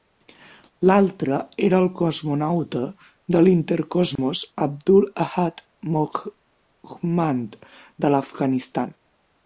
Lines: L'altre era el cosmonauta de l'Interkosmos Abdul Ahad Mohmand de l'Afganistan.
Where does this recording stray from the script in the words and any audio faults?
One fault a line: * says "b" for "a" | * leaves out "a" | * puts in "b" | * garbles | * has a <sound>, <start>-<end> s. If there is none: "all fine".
* has a dropout, 4.2-4.2 s